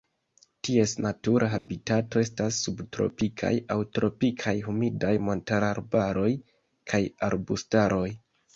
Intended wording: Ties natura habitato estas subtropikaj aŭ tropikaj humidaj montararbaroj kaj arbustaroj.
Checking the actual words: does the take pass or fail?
pass